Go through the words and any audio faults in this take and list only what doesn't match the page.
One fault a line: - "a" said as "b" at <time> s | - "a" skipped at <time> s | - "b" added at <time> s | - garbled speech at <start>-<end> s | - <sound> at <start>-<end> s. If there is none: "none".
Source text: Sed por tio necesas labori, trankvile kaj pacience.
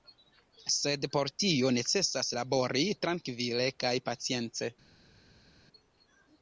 none